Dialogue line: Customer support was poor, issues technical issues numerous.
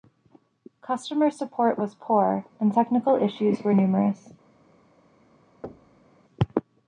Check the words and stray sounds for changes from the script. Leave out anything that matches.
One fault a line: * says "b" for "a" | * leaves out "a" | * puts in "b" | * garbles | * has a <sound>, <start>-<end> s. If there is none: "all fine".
* says "and" for "issues"
* puts in "were"
* has a thud, 5.6-6.1 s